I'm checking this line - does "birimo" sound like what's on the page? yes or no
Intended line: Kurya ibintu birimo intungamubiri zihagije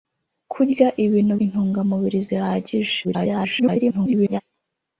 no